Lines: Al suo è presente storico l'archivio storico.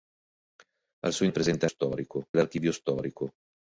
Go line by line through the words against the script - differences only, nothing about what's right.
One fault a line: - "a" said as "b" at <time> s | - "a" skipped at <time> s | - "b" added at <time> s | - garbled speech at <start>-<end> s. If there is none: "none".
none